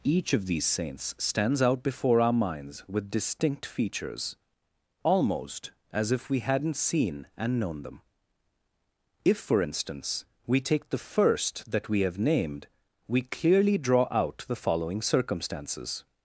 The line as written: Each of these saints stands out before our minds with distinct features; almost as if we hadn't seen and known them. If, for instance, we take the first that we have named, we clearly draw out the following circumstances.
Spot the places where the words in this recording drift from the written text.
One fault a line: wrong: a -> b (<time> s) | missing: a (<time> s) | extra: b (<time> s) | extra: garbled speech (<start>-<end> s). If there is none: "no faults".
no faults